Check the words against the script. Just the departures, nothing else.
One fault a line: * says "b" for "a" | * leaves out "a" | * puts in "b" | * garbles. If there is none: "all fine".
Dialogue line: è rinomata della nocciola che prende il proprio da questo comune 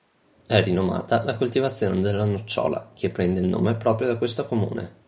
* puts in "la coltivazione"
* puts in "nome"